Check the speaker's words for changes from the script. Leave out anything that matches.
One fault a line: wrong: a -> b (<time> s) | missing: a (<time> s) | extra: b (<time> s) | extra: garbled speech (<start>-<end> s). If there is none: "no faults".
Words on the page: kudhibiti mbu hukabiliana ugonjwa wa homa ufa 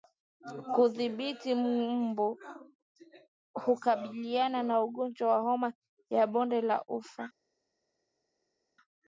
extra: na (4.6 s)
extra: ya bonde la (6.1 s)